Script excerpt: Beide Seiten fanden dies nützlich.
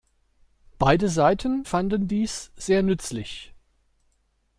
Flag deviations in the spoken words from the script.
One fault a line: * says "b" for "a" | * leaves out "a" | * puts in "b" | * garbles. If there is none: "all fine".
* puts in "sehr"